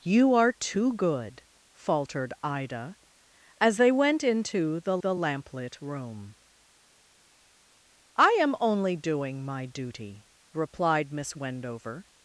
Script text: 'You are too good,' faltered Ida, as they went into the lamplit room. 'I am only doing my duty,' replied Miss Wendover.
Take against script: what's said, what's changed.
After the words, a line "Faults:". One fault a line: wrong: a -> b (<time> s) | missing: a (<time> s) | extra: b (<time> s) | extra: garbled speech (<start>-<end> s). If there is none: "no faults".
'You are too good,' faltered Ida, as they went into the the lamplit room. 'I am only doing my duty,' replied Miss Wendover.
Faults:
extra: the (5.0 s)